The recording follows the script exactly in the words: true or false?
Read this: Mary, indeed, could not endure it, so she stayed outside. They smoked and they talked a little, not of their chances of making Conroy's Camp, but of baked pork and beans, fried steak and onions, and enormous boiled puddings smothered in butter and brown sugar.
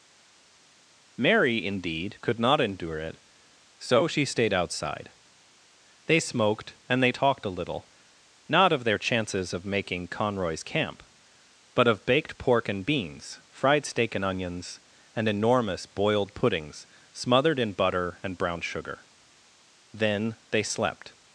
false